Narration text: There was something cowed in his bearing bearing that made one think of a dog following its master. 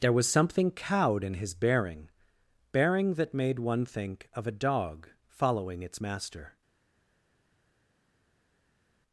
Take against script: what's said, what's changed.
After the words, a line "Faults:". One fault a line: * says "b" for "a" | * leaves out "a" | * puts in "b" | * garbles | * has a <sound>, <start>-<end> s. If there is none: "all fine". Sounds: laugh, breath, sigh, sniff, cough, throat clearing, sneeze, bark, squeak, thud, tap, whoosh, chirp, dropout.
There was something cowed in his bearing bearing that made one think of a dog following its master.
Faults:
all fine